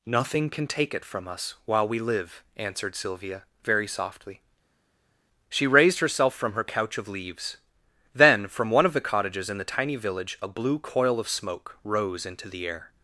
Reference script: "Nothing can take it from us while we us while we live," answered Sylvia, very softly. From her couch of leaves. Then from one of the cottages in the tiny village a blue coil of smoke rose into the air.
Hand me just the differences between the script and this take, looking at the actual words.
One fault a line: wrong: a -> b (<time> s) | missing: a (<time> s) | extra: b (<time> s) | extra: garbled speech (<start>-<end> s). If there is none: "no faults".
missing: us while we (2.0 s)
extra: She raised herself (5.5 s)